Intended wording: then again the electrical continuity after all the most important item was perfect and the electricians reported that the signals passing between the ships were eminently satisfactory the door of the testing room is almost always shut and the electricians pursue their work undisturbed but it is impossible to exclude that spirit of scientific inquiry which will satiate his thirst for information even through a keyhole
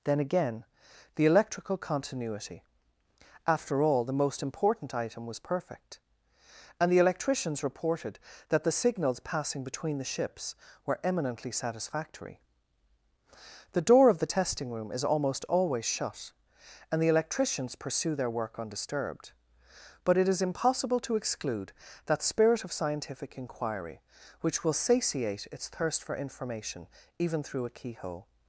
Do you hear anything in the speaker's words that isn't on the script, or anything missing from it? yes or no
yes